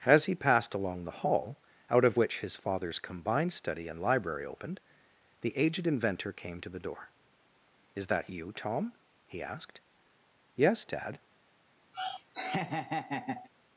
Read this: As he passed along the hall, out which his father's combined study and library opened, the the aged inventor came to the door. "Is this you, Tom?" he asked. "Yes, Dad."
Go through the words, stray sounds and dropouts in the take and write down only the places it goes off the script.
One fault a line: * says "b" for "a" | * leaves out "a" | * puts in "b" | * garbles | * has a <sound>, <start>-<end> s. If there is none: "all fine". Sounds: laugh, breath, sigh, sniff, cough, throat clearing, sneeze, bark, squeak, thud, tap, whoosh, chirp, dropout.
* puts in "of"
* leaves out "the"
* says "that" for "this"
* has a laugh, 11.9-13.5 s